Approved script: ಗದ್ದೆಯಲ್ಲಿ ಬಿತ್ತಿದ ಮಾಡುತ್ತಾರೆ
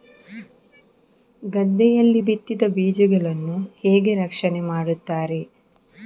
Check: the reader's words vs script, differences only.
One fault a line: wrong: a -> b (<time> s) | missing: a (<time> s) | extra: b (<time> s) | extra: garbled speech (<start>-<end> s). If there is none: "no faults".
extra: ಬೀಜಗಳನ್ನು ಹೇಗೆ ರಕ್ಷಣೆ (2.7 s)